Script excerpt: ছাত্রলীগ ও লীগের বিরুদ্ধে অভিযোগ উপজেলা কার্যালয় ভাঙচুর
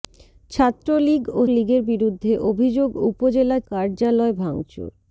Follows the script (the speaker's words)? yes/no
yes